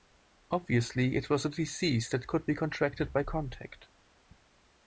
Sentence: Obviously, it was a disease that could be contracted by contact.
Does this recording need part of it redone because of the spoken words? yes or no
no